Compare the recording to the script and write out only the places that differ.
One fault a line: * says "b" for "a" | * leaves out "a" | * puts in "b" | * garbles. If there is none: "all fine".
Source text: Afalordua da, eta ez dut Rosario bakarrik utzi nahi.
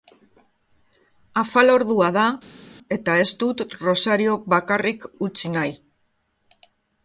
all fine